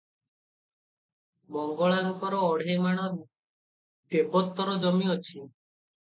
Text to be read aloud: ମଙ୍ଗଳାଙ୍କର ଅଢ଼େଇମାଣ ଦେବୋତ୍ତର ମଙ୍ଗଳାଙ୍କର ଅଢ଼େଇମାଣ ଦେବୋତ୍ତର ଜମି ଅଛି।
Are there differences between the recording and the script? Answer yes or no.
yes